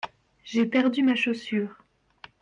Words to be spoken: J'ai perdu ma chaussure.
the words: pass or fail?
pass